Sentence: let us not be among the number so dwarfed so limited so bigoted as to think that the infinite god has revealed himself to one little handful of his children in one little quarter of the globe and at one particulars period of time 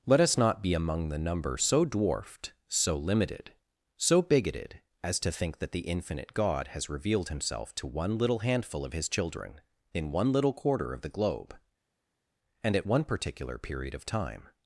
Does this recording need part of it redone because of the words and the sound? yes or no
yes